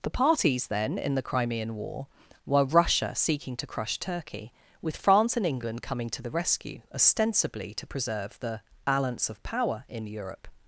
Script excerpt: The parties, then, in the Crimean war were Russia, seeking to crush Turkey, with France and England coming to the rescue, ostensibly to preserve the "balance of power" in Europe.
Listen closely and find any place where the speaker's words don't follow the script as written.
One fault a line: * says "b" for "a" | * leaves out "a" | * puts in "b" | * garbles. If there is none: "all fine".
all fine